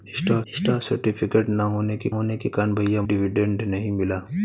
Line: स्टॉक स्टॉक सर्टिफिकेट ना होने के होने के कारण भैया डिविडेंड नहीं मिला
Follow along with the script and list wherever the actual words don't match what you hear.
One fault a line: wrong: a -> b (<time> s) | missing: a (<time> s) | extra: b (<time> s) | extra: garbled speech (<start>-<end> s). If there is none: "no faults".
no faults